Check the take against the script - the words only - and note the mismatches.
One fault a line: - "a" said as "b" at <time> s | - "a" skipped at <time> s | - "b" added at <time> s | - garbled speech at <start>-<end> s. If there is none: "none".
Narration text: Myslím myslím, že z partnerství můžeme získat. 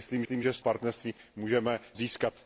none